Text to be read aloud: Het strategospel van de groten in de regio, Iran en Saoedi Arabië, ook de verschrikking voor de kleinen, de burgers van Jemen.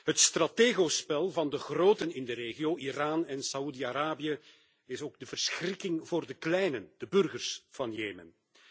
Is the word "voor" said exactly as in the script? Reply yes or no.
yes